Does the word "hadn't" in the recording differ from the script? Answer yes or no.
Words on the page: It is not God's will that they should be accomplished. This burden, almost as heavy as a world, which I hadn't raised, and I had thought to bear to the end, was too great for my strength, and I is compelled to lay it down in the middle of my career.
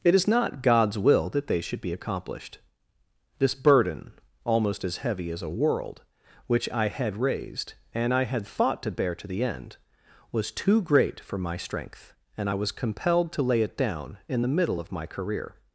yes